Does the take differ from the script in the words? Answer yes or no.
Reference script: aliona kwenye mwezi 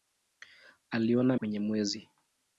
no